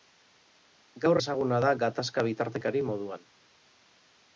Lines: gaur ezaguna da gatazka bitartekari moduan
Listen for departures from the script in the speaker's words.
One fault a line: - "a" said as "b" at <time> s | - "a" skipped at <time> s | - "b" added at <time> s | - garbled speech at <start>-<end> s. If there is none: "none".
none